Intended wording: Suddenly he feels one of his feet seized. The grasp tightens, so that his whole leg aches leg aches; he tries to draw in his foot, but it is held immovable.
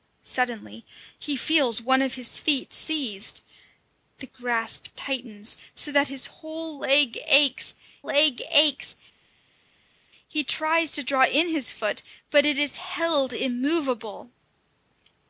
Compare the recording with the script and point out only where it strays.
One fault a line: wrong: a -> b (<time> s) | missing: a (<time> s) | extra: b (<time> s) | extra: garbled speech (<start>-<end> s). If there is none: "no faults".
no faults